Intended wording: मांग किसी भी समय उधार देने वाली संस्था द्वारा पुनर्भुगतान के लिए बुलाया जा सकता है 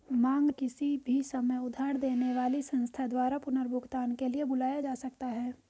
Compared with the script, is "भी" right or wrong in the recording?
right